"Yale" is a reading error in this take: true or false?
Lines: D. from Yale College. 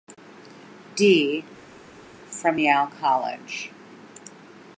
false